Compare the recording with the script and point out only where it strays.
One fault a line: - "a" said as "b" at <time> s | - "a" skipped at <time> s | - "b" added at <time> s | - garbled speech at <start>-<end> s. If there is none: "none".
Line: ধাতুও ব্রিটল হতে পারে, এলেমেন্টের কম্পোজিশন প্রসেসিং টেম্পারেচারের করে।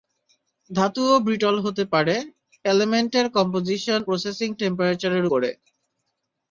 none